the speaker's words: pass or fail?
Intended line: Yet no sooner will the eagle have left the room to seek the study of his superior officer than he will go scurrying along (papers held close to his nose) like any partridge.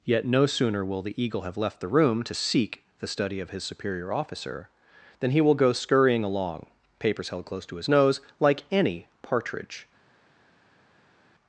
pass